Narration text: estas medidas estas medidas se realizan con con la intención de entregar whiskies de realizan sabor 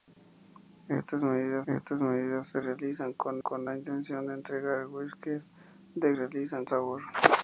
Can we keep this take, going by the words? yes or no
yes